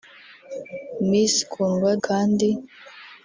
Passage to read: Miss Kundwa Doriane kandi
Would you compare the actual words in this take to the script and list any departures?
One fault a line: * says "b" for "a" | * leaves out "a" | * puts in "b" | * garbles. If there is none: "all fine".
* leaves out "Doriane"